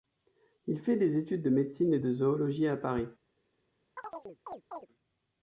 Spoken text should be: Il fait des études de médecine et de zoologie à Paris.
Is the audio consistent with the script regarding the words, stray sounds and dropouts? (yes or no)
no